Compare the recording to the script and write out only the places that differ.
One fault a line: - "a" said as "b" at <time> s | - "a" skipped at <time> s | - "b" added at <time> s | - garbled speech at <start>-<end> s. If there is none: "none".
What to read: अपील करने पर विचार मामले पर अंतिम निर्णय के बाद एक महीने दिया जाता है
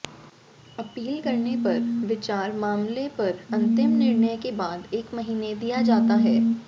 none